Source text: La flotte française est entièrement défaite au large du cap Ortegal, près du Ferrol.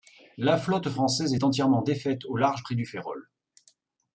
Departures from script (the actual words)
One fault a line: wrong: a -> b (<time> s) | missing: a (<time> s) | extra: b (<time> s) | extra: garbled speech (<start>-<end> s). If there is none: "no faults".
missing: du cap Ortegal (2.6 s)